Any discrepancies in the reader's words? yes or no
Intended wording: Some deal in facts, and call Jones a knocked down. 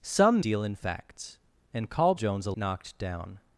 no